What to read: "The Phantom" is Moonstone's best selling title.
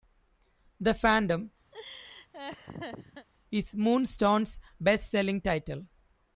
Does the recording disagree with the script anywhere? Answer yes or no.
no